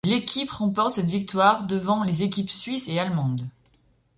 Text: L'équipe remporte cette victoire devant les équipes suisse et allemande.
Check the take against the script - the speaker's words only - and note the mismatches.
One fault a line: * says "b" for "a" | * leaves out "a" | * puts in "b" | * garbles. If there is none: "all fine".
all fine